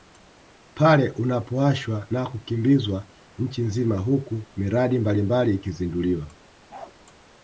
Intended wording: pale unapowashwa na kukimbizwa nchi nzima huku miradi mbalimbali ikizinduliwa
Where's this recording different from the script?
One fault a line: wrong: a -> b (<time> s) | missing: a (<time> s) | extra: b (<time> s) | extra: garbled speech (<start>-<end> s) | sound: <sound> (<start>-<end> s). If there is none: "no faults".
sound: bark (6.7-6.9 s)